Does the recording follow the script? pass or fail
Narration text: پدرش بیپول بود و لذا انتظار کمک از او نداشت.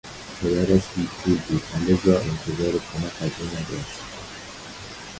pass